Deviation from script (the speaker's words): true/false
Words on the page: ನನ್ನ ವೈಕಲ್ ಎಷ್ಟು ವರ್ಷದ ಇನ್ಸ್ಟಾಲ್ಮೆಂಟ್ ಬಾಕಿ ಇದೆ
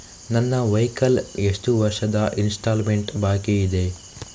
false